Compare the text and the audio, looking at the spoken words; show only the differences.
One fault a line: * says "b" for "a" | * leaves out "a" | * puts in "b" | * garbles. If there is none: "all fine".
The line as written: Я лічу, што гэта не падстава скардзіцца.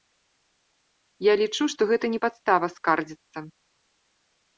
all fine